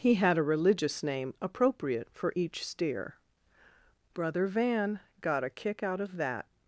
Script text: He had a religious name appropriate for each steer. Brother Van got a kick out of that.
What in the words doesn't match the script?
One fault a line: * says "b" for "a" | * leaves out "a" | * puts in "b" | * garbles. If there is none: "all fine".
all fine